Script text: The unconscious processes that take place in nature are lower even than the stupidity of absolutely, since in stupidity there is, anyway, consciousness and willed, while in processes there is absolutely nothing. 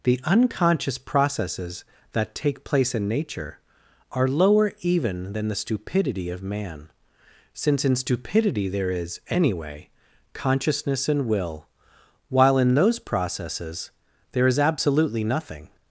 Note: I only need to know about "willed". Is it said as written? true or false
false